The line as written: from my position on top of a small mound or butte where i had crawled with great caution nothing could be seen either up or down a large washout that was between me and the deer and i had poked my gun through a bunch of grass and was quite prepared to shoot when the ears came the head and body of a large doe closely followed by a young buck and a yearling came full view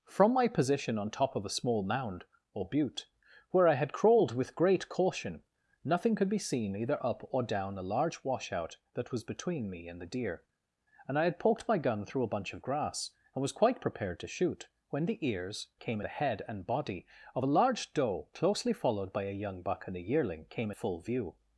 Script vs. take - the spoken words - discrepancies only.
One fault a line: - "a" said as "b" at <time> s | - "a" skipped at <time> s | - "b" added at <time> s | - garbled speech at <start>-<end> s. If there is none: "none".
none